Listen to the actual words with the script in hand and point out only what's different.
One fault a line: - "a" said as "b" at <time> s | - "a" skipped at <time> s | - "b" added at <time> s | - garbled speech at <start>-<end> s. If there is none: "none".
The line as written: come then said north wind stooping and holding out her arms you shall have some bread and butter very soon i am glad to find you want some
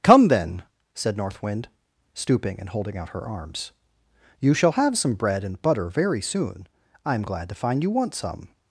none